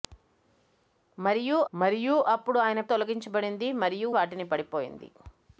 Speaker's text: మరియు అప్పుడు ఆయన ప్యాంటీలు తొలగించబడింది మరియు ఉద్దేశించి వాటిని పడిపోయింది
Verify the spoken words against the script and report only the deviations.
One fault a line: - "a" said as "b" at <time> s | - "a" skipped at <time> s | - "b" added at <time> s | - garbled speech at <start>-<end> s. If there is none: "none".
- "మరియు" added at 1.7 s
- "ప్యాంటీలు" skipped at 2.8 s
- "ఉద్దేశించి" skipped at 4.1 s